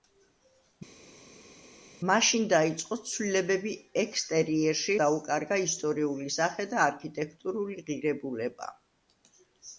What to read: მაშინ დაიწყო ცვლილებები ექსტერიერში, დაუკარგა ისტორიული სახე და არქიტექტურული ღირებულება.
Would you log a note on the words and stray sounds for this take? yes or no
no